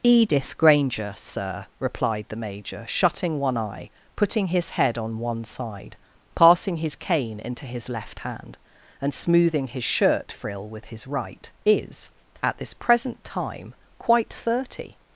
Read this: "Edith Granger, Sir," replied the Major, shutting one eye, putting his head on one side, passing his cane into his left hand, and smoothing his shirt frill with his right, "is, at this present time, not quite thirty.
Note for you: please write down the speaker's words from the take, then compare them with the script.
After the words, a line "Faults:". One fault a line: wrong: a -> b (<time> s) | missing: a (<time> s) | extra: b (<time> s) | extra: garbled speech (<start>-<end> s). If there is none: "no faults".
"Edith Granger, Sir," replied the Major, shutting one eye, putting his head on one side, passing his cane into his left hand, and smoothing his shirt frill with his right, "is, at this present time, quite thirty.
Faults:
missing: not (13.8 s)